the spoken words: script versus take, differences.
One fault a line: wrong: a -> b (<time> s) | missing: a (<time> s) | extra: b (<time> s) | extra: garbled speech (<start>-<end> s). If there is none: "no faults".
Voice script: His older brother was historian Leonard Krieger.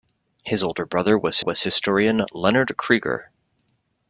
extra: was (1.4 s)